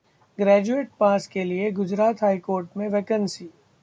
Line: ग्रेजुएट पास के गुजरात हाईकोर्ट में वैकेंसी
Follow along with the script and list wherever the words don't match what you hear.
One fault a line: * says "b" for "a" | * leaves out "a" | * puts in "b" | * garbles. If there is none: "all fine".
* puts in "लिए"